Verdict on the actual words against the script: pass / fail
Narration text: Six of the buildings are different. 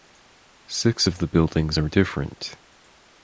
pass